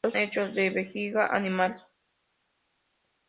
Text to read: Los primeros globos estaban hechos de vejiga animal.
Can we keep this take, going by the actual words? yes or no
no